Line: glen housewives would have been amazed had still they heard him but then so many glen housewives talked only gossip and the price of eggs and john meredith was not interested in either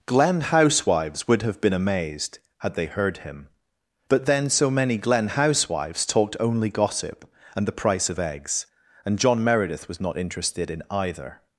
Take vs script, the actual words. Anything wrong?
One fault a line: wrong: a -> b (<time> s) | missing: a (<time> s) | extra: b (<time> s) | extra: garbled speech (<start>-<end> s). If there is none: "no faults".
missing: still (2.8 s)